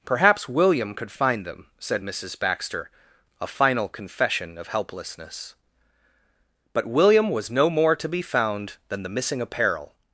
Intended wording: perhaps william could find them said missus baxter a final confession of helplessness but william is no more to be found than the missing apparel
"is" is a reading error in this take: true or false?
true